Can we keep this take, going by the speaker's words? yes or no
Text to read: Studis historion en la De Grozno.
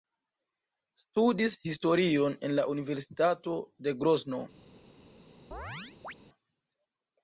no